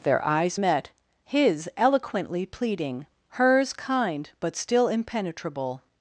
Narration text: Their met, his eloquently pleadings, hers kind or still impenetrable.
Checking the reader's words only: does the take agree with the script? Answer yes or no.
no